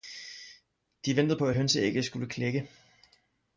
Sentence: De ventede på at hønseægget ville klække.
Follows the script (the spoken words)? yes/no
no